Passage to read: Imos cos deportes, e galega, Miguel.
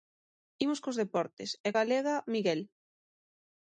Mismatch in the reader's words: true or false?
false